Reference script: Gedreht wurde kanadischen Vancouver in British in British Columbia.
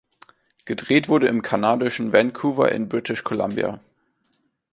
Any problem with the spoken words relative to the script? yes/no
yes